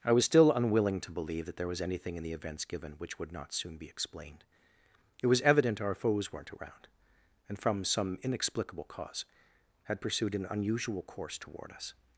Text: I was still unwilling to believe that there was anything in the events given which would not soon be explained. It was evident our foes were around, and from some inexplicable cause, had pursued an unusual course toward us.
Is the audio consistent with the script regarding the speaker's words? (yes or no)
no